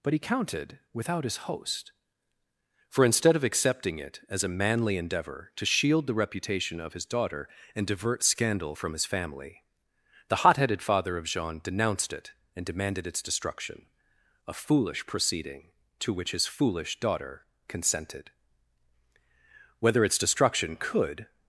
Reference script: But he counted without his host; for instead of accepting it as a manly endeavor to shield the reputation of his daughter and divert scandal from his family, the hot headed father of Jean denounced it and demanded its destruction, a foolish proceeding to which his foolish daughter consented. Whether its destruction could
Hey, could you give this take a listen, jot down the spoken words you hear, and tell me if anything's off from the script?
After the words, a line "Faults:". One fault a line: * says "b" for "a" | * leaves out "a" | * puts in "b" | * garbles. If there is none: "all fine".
But he counted without his host; for instead of accepting it as a manly endeavor to shield the reputation of his daughter and divert scandal from his family, the hot headed father of Jean denounced it and demanded its destruction, a foolish proceeding to which his foolish daughter consented. Whether its destruction could
Faults:
all fine